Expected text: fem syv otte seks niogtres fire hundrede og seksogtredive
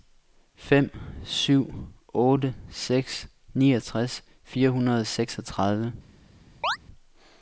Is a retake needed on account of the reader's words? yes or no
no